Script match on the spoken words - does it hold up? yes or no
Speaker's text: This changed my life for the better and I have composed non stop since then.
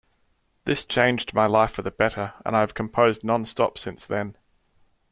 yes